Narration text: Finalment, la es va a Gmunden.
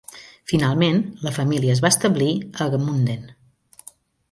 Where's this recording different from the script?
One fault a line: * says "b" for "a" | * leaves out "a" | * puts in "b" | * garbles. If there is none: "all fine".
* puts in "família"
* puts in "establir"